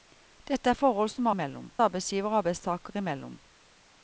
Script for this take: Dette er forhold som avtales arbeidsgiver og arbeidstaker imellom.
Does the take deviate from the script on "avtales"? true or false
true